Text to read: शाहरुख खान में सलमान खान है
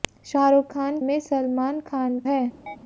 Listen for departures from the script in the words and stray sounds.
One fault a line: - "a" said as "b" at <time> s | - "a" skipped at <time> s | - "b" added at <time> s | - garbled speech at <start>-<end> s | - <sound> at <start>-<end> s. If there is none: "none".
- chirp at 2.7-2.8 s